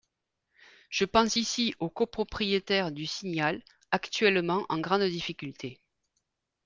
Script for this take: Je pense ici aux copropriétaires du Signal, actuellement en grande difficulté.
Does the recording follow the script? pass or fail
pass